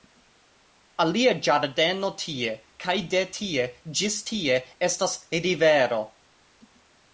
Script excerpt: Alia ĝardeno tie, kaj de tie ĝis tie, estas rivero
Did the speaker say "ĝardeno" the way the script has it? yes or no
yes